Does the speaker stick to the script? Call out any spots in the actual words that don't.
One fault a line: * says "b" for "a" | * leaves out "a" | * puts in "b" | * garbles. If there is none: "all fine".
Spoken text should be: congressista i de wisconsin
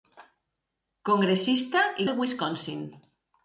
all fine